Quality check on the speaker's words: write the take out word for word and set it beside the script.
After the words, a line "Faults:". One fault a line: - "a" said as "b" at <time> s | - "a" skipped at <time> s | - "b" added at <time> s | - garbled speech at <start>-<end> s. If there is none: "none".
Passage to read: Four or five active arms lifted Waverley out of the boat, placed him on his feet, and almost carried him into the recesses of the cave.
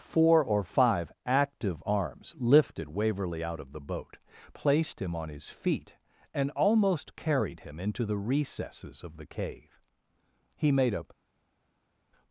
Four or five active arms lifted Waverley out of the boat, placed him on his feet, and almost carried him into the recesses of the cave. He made a
Faults:
- "He made a" added at 10.5 s